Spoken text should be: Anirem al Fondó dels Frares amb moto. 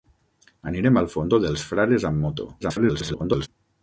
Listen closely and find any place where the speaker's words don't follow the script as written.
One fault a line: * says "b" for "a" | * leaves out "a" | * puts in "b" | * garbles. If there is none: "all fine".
* garbles